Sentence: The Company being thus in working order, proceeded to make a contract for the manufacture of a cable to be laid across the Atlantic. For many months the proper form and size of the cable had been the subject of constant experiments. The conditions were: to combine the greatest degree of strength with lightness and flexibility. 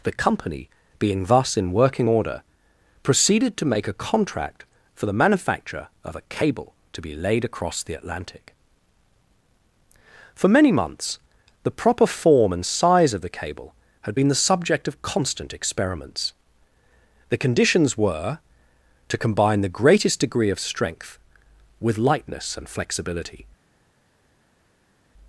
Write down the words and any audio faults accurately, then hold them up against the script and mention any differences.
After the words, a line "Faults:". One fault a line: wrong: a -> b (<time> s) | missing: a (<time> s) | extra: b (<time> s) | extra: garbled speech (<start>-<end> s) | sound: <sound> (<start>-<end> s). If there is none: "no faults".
The Company being thus in working order, proceeded to make a contract for the manufacture of a cable to be laid across the Atlantic. For many months the proper form and size of the cable had been the subject of constant experiments. The conditions were: to combine the greatest degree of strength with lightness and flexibility.
Faults:
no faults